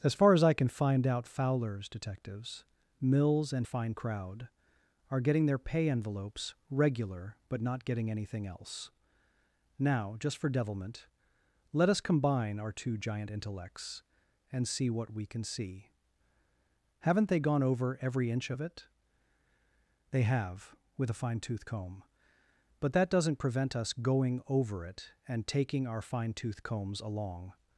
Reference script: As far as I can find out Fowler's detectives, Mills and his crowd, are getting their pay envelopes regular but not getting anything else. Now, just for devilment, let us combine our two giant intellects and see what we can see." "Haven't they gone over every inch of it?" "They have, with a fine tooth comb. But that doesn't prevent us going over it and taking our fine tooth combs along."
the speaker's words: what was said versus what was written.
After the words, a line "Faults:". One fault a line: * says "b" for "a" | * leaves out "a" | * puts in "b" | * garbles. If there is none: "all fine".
As far as I can find out Fowler's detectives, Mills and fine crowd, are getting their pay envelopes regular but not getting anything else. Now, just for devilment, let us combine our two giant intellects and see what we can see." "Haven't they gone over every inch of it?" "They have, with a fine tooth comb. But that doesn't prevent us going over it and taking our fine tooth combs along."
Faults:
* says "fine" for "his"